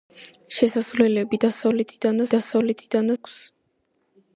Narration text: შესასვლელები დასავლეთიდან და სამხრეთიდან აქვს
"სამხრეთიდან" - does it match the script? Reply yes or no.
no